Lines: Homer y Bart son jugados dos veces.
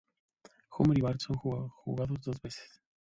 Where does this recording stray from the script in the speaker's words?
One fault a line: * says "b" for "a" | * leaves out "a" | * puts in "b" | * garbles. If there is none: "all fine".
all fine